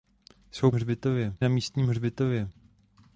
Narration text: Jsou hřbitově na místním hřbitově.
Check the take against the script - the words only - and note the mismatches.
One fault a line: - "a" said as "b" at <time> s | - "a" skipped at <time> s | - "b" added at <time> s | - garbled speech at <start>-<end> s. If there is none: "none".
none